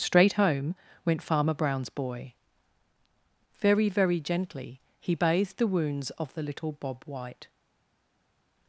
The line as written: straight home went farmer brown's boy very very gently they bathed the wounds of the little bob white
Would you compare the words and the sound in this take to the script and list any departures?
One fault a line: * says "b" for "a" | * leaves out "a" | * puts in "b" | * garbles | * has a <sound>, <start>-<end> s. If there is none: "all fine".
* says "he" for "they"